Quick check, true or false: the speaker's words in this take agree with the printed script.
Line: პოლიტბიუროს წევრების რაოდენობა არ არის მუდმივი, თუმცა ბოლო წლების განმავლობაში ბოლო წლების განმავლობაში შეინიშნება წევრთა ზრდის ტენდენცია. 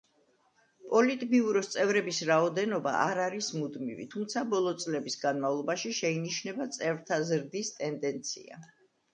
false